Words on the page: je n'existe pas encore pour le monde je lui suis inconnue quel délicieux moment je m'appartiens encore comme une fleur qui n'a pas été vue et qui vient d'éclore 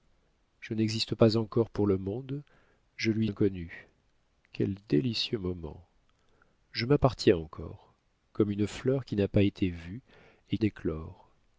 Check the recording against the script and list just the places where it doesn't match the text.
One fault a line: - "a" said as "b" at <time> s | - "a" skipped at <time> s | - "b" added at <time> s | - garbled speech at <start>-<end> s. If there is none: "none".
- "suis" skipped at 3.3 s
- "qui vient" skipped at 10.6 s